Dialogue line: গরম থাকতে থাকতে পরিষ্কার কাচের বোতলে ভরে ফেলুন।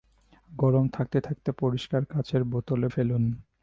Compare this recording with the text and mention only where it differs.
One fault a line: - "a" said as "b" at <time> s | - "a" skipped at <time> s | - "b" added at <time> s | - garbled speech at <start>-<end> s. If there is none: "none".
- "ভরে" skipped at 2.9 s